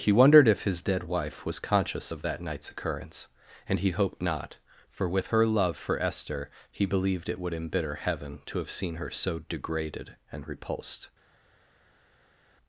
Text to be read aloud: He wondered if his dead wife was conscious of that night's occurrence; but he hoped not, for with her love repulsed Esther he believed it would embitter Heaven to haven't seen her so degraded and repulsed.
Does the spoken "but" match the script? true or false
false